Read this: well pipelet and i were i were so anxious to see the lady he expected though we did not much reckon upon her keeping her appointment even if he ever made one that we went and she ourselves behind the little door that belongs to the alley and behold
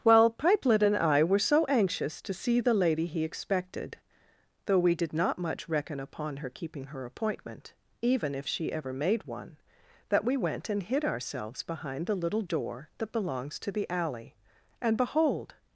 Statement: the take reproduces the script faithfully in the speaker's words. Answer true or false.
false